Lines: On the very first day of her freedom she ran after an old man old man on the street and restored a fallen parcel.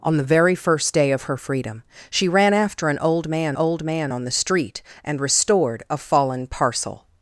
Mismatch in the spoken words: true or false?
false